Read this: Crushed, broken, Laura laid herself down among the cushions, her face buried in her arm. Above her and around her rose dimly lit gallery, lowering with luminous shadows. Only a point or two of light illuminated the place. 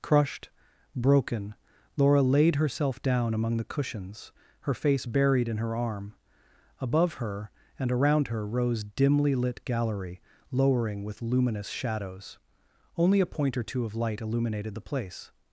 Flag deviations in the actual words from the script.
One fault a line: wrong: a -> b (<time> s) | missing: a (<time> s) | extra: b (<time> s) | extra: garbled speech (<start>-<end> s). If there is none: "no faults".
no faults